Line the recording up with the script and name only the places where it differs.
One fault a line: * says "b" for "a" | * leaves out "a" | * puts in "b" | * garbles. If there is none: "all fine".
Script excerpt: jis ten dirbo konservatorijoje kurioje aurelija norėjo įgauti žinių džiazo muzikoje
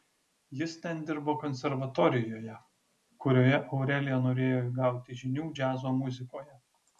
all fine